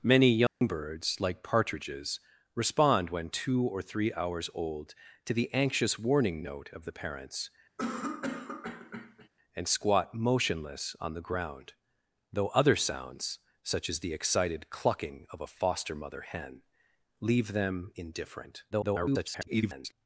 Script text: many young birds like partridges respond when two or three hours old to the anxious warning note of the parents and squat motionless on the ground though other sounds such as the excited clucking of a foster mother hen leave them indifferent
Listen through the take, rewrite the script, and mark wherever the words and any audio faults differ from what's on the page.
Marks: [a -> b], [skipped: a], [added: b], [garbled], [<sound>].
many young [dropout] birds like partridges respond when two or three hours old to the anxious warning note of the parents [cough] and squat motionless on the ground though other sounds such as the excited clucking of a foster mother hen leave them indifferent [garbled]